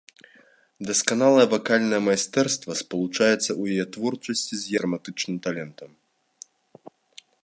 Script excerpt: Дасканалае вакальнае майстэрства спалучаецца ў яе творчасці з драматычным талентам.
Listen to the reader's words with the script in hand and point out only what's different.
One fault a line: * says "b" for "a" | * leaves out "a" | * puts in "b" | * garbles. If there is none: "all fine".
all fine